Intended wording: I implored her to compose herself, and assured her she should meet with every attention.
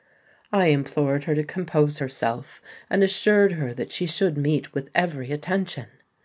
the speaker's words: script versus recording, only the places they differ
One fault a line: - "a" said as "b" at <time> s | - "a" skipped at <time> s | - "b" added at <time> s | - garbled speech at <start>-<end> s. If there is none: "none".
- "that" added at 3.7 s